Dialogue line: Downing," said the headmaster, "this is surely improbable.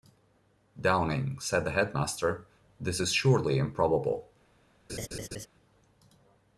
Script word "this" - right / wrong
right